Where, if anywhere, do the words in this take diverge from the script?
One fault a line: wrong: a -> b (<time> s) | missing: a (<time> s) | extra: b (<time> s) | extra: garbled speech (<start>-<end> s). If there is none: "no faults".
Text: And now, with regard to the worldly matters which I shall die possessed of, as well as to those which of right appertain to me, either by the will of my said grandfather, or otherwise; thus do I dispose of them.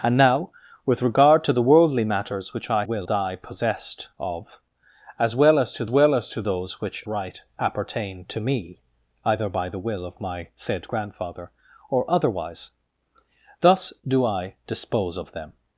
wrong: shall -> will (2.8 s)
extra: well as to (5.9 s)
missing: of (7.0 s)